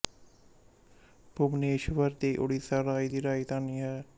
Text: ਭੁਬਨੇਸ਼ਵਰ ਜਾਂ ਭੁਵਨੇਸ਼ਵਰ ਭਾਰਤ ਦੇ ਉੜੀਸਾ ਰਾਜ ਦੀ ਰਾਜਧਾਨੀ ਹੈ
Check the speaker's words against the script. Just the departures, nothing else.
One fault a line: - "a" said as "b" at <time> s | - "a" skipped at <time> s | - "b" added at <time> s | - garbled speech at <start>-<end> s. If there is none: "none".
- "ਜਾਂ ਭੁਵਨੇਸ਼ਵਰ ਭਾਰਤ" skipped at 2.1 s